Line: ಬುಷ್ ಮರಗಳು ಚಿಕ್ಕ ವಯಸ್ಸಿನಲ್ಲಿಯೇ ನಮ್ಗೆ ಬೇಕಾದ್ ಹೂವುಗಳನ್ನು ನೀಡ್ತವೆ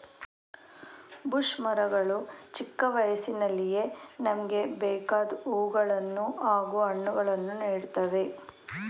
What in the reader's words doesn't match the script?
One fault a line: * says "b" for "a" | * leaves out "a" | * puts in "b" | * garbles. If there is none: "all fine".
* puts in "ಹಾಗೂ ಹಣ್ಣುಗಳನ್ನು"